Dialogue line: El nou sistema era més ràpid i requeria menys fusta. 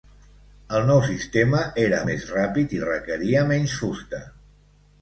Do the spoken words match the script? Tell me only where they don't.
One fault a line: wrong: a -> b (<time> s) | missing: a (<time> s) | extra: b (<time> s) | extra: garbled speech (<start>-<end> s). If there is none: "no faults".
no faults